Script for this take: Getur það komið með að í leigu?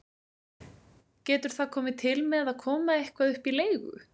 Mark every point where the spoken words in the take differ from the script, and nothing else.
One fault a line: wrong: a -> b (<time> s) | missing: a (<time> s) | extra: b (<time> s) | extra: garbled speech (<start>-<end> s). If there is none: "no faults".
extra: til (2.0 s)
extra: koma eitthvað upp (2.6 s)